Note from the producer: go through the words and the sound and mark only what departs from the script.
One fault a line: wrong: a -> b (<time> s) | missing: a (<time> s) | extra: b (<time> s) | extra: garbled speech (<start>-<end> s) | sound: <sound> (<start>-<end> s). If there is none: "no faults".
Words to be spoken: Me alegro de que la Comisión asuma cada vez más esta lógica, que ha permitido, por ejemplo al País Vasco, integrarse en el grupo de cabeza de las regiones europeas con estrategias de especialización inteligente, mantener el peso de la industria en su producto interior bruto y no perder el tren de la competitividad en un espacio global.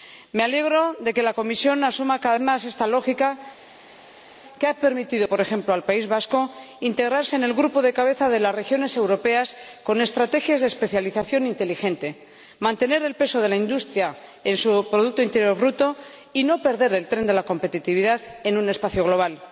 missing: vez (2.4 s)